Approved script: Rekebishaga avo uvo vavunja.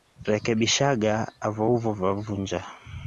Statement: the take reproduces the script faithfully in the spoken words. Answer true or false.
true